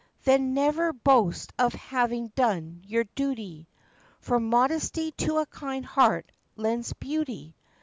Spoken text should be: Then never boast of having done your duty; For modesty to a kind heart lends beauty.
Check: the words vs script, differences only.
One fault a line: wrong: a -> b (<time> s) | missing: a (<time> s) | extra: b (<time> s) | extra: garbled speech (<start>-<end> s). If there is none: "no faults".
no faults